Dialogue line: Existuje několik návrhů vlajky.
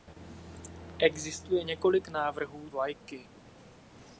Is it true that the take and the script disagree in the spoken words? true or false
false